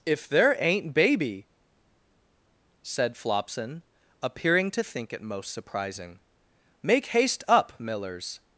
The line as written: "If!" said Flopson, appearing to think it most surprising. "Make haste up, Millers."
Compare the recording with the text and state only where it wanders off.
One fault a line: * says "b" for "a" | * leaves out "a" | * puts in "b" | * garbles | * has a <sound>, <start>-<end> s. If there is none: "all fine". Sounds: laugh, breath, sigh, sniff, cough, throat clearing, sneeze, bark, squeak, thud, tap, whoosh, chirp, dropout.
* puts in "there ain't Baby"